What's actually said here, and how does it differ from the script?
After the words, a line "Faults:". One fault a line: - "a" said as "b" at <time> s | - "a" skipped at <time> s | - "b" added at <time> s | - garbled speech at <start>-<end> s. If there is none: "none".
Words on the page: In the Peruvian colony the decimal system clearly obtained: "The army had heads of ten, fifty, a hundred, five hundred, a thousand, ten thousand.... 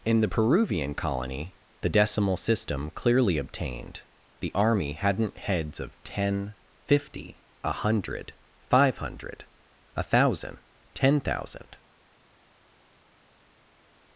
In the Peruvian colony the decimal system clearly obtained: "The army hadn't heads of ten, fifty, a hundred, five hundred, a thousand, ten thousand....
Faults:
- "had" said as "hadn't" at 4.9 s